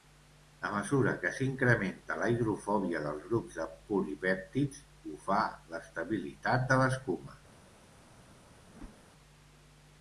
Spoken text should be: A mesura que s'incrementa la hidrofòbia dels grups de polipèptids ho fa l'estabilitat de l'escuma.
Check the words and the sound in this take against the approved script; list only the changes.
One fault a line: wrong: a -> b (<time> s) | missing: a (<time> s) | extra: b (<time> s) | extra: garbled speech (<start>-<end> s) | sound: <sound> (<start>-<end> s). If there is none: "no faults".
sound: whoosh (8.7-9.0 s)